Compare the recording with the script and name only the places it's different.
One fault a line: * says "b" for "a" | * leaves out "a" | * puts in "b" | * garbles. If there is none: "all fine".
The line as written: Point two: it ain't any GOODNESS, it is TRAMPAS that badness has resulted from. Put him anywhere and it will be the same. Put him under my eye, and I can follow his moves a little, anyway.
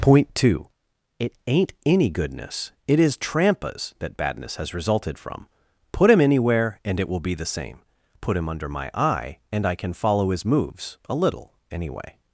all fine